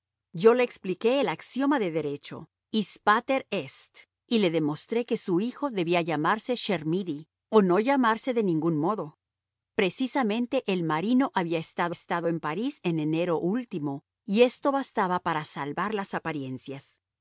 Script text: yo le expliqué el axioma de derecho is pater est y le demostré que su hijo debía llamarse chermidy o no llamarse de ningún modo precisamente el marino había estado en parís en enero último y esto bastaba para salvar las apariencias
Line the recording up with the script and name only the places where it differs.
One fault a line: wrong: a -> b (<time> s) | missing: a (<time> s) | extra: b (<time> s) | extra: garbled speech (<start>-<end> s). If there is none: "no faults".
extra: estado (11.9 s)